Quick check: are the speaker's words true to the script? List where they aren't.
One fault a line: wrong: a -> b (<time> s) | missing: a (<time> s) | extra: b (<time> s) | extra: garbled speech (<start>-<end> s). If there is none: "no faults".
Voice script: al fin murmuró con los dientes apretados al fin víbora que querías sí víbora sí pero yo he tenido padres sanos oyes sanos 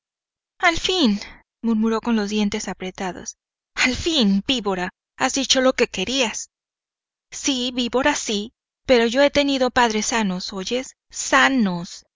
extra: has dicho lo (5.2 s)